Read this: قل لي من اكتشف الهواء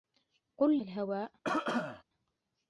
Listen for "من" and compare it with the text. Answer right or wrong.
wrong